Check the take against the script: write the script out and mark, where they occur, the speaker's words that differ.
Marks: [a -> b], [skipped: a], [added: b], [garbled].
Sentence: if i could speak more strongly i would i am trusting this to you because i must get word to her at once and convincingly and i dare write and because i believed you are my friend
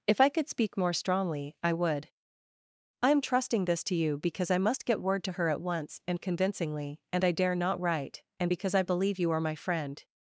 if i could speak more strongly i would i am trusting this to you because i must get word to her at once and convincingly and i dare [added: not] write and because i [believed -> believe] you are my friend